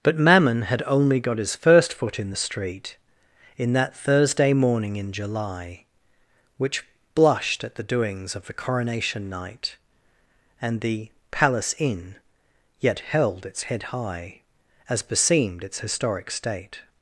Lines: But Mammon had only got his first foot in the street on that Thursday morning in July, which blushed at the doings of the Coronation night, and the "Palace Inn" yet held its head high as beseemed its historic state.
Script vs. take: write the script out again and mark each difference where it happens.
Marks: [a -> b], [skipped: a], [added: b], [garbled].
But Mammon had only got his first foot in the street [on -> in] that Thursday morning in July, which blushed at the doings of the Coronation night, and the "Palace Inn" yet held its head high as beseemed its historic state.